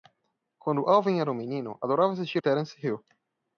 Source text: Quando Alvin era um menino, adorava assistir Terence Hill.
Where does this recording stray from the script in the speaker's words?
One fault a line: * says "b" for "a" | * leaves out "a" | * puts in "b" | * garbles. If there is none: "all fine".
all fine